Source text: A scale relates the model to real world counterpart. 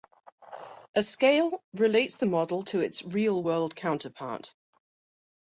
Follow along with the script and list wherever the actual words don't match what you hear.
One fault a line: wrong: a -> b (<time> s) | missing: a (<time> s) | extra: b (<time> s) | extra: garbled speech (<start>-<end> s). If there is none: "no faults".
extra: its (2.8 s)